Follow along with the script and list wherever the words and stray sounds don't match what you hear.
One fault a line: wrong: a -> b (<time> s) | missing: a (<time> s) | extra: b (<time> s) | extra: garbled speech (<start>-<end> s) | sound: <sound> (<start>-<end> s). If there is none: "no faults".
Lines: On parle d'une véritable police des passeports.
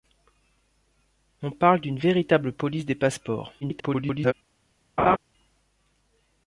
extra: garbled speech (3.6-4.3 s)
sound: laugh (5.0-5.2 s)